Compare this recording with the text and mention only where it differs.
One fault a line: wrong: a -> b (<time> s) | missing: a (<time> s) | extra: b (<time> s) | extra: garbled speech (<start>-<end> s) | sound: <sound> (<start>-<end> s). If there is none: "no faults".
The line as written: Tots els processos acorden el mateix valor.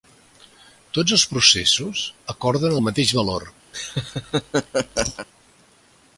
sound: laugh (3.7-5.3 s)